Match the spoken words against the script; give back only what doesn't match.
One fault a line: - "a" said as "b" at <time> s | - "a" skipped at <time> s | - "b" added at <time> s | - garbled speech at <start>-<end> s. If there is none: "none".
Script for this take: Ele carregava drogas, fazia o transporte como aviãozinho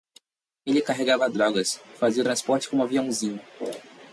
none